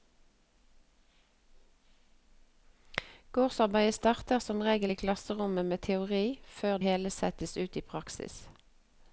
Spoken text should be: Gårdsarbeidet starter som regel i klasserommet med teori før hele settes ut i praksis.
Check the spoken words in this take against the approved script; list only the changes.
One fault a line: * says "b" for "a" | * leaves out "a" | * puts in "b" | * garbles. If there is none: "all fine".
all fine